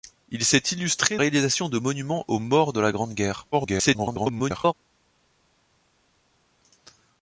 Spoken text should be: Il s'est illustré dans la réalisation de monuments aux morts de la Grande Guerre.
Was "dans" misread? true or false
true